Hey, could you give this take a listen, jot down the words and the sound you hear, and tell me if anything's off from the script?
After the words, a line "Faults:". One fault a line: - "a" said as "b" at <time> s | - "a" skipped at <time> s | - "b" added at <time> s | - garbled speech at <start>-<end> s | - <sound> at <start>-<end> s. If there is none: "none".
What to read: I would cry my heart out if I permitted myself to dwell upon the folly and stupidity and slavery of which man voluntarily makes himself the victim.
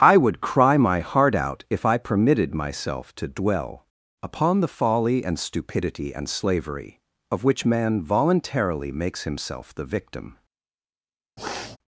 I would cry my heart out if I permitted myself to dwell upon the folly and stupidity and slavery of which man voluntarily makes himself the victim.
Faults:
- sniff at 11.4-11.8 s